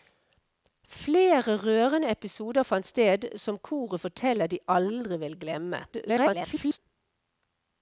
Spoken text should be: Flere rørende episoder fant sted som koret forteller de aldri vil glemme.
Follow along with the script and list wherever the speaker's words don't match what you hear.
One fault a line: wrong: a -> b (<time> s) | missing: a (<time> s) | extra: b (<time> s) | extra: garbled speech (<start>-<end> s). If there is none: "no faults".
extra: garbled speech (5.9-6.8 s)